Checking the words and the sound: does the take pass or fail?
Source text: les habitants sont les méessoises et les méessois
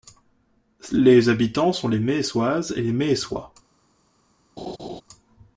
fail